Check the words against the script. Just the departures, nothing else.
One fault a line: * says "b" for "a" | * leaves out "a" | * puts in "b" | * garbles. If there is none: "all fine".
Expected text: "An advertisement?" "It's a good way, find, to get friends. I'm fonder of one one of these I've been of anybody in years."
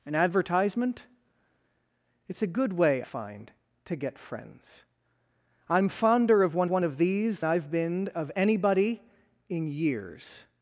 all fine